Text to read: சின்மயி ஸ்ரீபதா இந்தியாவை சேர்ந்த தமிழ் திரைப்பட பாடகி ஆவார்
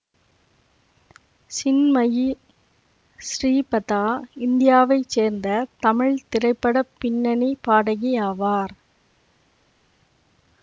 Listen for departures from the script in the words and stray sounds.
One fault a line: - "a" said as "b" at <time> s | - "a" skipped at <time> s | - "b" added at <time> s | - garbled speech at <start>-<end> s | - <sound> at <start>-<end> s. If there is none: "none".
- "பின்னணி" added at 7.0 s